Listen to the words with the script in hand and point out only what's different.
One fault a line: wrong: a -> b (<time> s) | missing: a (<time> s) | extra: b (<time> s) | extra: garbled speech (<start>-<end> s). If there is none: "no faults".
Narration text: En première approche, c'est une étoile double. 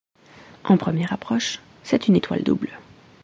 no faults